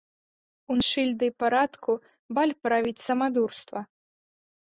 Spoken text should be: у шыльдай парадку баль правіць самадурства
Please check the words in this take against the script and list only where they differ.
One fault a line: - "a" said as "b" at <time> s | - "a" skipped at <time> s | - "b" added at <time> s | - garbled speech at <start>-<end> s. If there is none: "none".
none